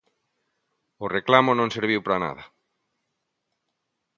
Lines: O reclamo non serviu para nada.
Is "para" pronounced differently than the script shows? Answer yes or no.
no